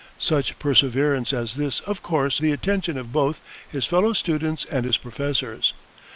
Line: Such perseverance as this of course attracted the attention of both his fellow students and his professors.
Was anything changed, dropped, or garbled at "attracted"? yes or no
yes